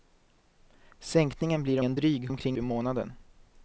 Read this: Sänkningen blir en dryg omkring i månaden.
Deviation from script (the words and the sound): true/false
false